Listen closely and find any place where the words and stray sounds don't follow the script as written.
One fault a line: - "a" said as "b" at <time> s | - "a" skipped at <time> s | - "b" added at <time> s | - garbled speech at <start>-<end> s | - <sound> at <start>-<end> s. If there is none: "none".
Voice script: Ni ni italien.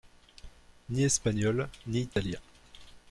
- "espagnol" added at 1.0 s
- dropout at 2.1-2.2 s